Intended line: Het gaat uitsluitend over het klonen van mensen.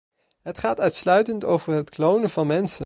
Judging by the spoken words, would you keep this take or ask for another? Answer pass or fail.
pass